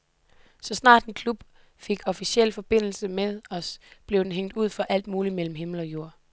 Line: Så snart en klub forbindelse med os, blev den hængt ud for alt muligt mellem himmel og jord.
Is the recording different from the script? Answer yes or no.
yes